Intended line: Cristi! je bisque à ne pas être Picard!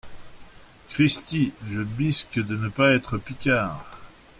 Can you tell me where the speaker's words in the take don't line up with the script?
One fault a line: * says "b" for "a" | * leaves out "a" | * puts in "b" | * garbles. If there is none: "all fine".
* says "de" for "à"